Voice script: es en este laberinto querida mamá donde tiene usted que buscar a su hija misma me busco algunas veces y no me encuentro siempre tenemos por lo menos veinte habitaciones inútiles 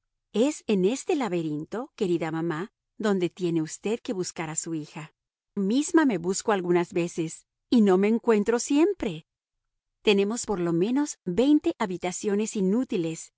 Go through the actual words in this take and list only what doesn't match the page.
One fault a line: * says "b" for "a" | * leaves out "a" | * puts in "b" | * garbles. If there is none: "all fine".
all fine